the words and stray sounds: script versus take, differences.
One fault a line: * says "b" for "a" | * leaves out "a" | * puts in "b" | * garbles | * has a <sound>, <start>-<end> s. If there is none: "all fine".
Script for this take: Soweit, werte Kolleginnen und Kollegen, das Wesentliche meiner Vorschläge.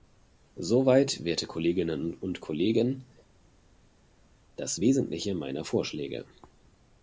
all fine